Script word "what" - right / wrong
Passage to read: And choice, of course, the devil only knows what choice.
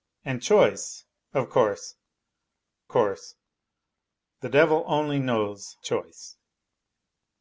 wrong